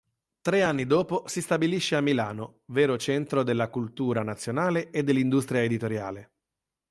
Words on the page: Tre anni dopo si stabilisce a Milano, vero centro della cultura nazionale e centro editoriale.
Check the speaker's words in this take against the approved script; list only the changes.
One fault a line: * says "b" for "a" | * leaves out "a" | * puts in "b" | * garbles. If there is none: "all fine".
* says "dell'industria" for "centro"